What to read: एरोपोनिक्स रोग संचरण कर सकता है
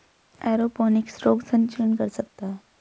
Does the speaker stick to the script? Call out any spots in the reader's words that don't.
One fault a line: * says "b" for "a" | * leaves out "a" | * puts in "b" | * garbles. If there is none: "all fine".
all fine